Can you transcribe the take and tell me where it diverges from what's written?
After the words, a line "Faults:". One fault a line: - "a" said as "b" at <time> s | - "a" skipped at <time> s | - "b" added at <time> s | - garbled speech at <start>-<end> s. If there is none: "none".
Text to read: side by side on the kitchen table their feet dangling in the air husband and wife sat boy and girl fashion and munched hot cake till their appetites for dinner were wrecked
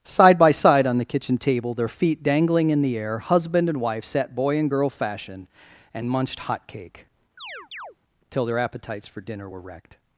side by side on the kitchen table their feet dangling in the air husband and wife sat boy and girl fashion and munched hot cake till their appetites for dinner were wrecked
Faults:
none